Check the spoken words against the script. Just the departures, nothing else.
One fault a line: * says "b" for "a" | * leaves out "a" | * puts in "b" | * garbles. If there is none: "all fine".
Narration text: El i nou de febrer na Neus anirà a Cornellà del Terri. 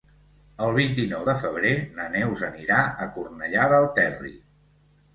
* puts in "vint"